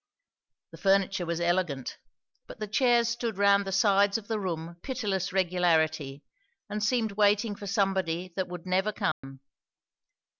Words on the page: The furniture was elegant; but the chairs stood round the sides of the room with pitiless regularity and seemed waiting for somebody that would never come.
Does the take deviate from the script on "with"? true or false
true